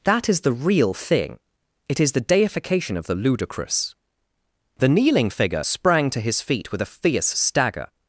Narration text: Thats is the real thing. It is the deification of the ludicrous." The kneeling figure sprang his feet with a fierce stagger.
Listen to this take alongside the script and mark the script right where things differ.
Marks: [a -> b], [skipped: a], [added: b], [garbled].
[Thats -> That] is the real thing. It is the deification of the ludicrous." The kneeling figure sprang [added: to] his feet with a fierce stagger.